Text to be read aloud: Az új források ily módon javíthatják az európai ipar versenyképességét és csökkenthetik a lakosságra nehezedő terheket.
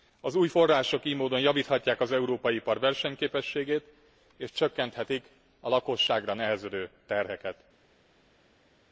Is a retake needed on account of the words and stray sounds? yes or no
no